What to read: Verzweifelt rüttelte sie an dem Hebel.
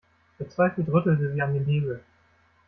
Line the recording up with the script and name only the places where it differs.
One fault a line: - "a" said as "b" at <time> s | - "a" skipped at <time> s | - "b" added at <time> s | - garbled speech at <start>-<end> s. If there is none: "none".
none